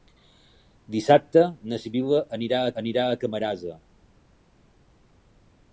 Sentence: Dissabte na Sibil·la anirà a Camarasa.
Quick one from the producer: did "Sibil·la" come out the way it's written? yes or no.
yes